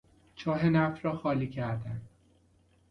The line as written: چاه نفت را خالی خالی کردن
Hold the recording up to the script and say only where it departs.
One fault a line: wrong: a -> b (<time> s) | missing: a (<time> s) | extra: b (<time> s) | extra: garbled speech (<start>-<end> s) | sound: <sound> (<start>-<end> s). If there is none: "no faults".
missing: خالی (1.5 s)